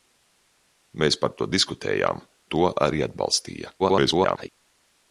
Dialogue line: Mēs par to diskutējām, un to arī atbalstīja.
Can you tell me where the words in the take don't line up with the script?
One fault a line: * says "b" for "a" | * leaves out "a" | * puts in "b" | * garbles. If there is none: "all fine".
* leaves out "un"
* garbles